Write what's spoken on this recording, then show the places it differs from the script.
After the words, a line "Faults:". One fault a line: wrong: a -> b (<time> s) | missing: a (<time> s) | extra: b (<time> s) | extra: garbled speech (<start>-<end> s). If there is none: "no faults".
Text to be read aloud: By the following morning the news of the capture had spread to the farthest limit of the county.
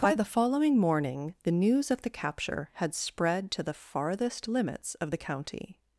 By the following morning the news of the capture had spread to the farthest limits of the county.
Faults:
wrong: limit -> limits (4.5 s)